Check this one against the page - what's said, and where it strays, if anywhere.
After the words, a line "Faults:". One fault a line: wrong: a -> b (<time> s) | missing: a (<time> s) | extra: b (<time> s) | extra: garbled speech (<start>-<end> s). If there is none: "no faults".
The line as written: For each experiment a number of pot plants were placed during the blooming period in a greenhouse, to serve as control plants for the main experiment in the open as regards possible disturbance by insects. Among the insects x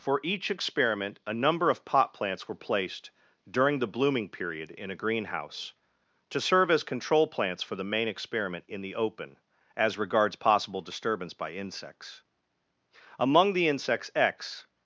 For each experiment a number of pot plants were placed during the blooming period in a greenhouse, to serve as control plants for the main experiment in the open as regards possible disturbance by insects. Among the insects x
Faults:
no faults